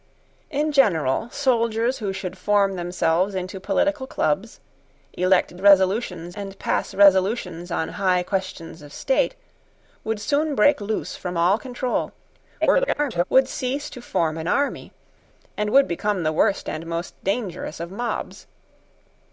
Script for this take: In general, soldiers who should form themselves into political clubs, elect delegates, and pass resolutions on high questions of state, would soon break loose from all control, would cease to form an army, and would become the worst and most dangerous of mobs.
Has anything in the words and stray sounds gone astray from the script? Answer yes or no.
yes